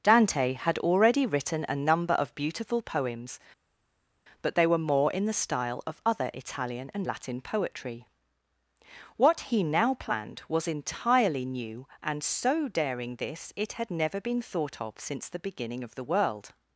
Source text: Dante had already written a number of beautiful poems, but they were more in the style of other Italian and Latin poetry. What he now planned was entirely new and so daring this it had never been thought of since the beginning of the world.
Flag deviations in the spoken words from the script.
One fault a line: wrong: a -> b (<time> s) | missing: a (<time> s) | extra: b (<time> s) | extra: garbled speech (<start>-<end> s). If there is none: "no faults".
no faults